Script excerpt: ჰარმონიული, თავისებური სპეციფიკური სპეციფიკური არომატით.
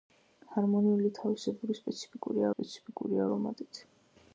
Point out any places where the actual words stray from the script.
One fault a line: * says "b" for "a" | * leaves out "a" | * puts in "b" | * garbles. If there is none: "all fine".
all fine